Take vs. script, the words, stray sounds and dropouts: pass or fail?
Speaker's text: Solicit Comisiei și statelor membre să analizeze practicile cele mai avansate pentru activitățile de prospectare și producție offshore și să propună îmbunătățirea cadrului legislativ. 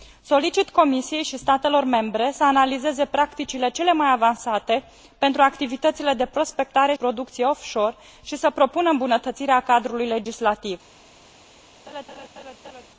fail